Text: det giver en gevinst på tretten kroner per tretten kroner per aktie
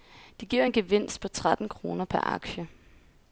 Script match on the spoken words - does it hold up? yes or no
no